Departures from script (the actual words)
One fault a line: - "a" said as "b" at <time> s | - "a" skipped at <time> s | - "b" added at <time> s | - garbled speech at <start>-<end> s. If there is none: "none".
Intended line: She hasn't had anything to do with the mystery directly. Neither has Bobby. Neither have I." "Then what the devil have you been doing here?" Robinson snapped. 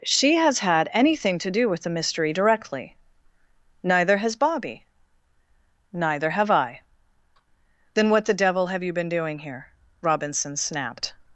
- "hasn't" said as "has" at 0.3 s